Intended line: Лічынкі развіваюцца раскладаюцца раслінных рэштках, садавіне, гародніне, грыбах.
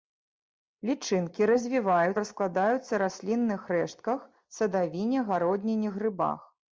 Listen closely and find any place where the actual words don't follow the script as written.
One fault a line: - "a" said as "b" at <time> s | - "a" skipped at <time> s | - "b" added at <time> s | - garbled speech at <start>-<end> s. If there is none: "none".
none